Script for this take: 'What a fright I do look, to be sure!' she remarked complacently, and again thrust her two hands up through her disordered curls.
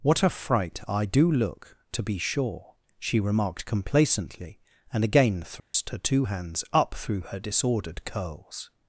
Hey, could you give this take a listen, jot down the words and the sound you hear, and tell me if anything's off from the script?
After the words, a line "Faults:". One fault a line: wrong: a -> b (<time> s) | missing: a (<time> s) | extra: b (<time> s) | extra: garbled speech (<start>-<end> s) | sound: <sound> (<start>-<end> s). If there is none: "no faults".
'What a fright I do look, to be sure!' she remarked complacently, and again thrust her two hands up through her disordered curls.
Faults:
sound: dropout (5.6-5.7 s)